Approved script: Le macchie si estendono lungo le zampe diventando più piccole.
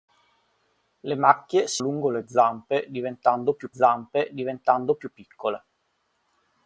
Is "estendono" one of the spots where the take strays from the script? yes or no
yes